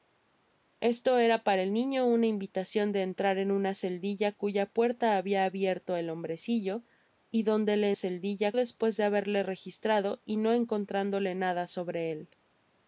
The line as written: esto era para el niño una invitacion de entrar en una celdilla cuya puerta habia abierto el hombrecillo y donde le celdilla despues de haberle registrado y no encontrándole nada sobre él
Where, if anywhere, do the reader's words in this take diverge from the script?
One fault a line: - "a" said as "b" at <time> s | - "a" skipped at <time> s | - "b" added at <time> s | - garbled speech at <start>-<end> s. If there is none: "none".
none